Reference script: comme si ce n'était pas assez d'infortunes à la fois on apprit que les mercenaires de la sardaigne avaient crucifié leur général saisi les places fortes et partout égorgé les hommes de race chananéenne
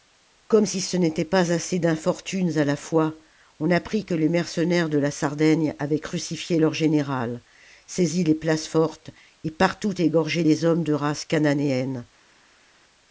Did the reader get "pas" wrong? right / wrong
right